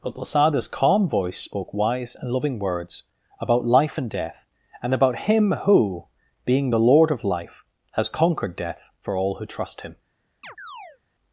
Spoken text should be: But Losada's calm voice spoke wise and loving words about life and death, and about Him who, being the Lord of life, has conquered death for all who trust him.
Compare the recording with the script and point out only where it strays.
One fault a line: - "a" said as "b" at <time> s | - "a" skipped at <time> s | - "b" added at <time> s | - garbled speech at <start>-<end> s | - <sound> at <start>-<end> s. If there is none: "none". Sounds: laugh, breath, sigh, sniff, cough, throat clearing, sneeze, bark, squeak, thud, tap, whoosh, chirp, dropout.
- chirp at 10.4-11.0 s